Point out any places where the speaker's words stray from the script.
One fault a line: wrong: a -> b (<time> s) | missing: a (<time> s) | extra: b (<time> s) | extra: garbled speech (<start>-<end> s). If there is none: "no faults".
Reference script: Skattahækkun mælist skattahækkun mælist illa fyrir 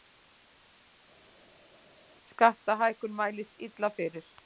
missing: skattahækkun mælist (3.5 s)